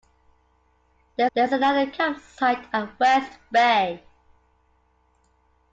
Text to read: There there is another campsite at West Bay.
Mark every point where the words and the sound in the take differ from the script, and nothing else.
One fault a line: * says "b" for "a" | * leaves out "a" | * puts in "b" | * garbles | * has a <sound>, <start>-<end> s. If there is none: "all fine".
all fine